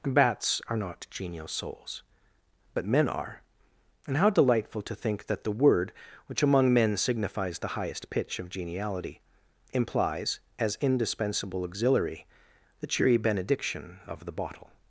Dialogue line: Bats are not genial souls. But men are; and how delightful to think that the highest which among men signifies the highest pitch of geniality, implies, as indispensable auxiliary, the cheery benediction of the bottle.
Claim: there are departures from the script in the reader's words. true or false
true